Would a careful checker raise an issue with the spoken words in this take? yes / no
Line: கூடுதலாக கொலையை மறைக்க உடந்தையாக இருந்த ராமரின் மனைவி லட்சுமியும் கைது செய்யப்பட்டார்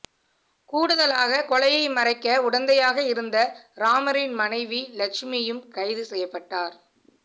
no